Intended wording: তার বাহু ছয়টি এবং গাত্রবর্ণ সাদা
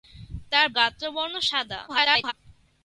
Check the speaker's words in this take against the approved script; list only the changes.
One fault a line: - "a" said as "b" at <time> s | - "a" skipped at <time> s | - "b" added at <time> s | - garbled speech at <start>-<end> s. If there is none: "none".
- "বাহু ছয়টি এবং" skipped at 0.7 s
- garbled speech at 1.9-2.3 s